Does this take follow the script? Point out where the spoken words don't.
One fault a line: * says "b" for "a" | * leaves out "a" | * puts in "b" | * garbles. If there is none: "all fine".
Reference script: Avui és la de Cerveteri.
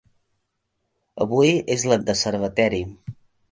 all fine